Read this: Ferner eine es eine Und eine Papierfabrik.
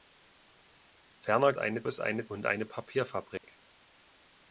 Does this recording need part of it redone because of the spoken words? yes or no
no